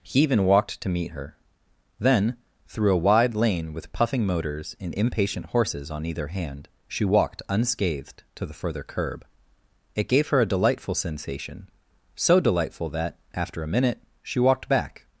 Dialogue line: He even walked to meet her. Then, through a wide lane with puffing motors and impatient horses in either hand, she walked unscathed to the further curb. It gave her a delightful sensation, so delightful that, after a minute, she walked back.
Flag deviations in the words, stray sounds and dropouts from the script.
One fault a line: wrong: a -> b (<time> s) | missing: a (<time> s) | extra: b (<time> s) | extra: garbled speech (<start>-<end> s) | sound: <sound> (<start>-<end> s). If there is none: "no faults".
wrong: in -> on (5.9 s)